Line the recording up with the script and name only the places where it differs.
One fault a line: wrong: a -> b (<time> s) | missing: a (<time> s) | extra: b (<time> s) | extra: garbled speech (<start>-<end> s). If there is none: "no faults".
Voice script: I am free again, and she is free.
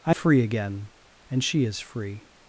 missing: am (0.1 s)